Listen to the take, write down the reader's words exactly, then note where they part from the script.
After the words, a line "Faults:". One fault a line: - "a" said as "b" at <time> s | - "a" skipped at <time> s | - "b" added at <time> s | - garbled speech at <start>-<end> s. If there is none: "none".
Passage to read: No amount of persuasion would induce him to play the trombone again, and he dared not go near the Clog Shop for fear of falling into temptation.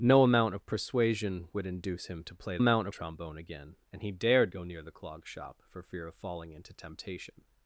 No amount of persuasion would induce him to play amount trombone again, and he dared go near the Clog Shop for fear of falling into temptation.
Faults:
- "the" said as "amount" at 2.6 s
- "not" skipped at 4.5 s